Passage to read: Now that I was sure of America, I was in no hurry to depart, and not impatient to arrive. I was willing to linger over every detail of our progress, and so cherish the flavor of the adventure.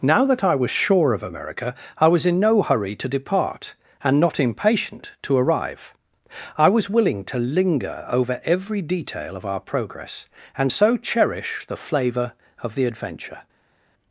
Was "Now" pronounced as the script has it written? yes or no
yes